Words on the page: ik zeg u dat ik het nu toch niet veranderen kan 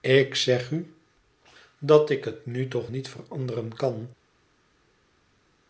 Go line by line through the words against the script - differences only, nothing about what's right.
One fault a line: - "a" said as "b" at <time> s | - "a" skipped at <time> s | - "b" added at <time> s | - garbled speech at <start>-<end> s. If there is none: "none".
none